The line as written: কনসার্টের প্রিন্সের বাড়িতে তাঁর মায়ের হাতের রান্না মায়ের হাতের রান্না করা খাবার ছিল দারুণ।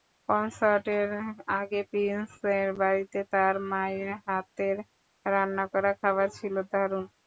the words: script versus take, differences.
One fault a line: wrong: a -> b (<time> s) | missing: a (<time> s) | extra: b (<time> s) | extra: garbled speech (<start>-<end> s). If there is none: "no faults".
extra: আগে (1.6 s)
missing: মায়ের হাতের রান্না (5.6 s)